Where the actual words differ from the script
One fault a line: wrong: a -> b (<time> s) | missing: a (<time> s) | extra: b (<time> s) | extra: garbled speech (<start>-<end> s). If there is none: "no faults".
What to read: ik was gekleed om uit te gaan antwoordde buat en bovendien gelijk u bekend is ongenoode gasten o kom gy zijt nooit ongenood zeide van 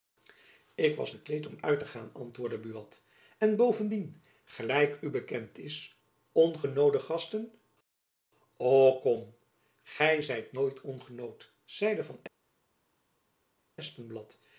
no faults